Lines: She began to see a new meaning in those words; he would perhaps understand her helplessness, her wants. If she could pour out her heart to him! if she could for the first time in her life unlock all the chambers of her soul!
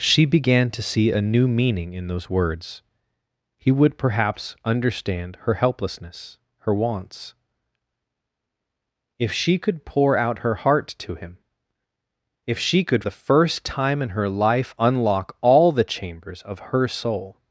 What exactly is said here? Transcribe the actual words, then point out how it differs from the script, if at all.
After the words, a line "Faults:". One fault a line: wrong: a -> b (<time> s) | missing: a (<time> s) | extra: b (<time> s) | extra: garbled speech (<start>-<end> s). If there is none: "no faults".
She began to see a new meaning in those words; he would perhaps understand her helplessness, her wants. If she could pour out her heart to him! if she could the first time in her life unlock all the chambers of her soul!
Faults:
missing: for (13.0 s)